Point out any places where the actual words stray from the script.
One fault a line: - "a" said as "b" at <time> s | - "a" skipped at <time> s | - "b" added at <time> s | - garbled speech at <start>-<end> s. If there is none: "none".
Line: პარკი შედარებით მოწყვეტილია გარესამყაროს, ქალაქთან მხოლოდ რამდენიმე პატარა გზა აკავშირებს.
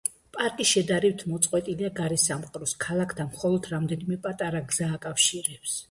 none